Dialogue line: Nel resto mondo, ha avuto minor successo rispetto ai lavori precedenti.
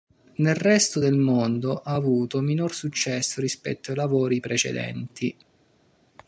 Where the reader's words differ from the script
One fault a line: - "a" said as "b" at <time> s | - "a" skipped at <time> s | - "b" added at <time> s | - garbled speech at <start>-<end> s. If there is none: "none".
- "del" added at 1.0 s